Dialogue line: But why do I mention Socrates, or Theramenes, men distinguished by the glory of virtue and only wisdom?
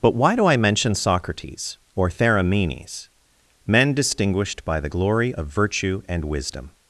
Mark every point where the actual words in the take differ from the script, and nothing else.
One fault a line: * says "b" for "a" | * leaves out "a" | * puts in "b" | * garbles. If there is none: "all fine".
* leaves out "only"